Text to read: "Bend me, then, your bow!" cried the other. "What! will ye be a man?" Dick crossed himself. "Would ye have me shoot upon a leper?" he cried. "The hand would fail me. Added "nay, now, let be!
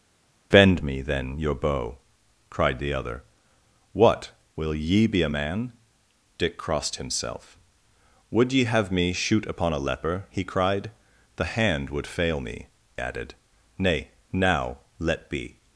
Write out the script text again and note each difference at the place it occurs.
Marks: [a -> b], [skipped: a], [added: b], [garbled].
"Bend me, then, your bow!" cried the other. "What! will ye be a man?" Dick crossed himself. "Would ye have me shoot upon a leper?" he cried. "The hand would fail me. Added "nay, now, let be!